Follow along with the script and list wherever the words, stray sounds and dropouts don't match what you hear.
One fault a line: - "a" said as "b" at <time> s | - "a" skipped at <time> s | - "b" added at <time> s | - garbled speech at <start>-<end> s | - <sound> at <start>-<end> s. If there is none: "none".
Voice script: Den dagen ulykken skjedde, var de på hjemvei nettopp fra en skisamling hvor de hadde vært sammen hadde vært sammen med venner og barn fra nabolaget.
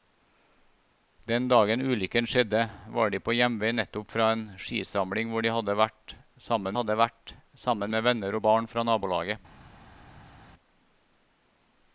none